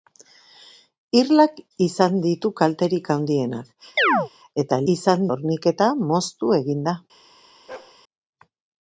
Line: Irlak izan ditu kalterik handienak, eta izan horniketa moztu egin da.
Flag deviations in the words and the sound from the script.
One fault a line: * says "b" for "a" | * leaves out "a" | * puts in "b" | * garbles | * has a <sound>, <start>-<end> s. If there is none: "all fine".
* has a chirp, 4.0-4.3 s
* has a bark, 7.7-8.0 s